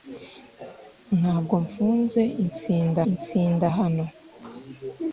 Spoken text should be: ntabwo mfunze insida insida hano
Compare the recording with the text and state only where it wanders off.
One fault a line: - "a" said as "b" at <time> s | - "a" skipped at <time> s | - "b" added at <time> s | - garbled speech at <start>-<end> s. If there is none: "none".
none